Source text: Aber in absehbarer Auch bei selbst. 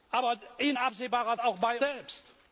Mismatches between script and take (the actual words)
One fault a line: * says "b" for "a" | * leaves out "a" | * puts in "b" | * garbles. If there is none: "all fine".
all fine